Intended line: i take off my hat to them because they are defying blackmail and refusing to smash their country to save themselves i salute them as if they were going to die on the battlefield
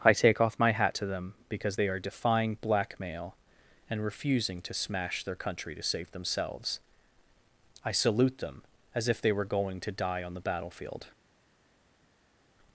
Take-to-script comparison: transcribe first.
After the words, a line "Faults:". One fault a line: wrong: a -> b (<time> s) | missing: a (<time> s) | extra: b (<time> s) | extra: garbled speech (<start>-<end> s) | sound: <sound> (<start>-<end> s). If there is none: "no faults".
i take off my hat to them because they are defying blackmail and refusing to smash their country to save themselves i salute them as if they were going to die on the battlefield
Faults:
no faults